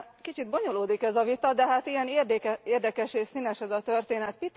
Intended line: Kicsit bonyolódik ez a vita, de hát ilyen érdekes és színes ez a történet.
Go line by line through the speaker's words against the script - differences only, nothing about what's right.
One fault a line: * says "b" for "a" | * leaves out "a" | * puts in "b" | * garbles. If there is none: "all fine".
all fine